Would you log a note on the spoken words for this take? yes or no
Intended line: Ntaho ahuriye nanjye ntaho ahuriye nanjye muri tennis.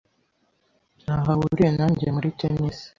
yes